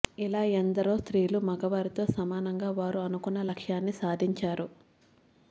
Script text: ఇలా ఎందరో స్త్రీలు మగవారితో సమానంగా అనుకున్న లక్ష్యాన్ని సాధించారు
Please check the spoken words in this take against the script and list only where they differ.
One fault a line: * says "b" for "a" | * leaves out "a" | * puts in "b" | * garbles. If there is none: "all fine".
* puts in "వారు"